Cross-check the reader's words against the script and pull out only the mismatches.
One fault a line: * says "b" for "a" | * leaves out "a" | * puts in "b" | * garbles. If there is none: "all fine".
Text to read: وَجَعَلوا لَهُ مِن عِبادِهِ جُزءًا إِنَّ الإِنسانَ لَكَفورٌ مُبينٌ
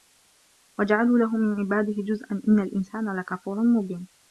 all fine